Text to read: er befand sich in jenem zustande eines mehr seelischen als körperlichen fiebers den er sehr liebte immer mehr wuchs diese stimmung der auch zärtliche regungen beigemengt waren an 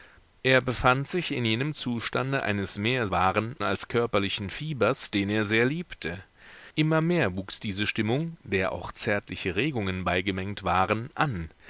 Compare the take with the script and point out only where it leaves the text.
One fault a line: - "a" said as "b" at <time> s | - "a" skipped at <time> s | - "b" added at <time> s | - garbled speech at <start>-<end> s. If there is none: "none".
- "seelischen" said as "waren" at 3.1 s